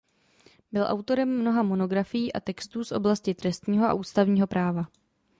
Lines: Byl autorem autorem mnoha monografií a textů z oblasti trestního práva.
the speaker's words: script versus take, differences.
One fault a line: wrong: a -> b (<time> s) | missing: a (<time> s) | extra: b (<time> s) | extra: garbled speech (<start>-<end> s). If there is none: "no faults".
missing: autorem (1.4 s)
extra: a ústavního (3.9 s)